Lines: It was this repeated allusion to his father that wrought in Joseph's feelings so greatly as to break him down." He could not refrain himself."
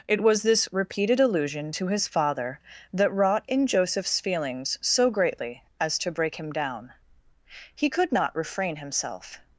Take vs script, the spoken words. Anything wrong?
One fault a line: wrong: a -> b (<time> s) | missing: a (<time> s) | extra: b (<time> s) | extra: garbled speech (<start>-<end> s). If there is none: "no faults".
no faults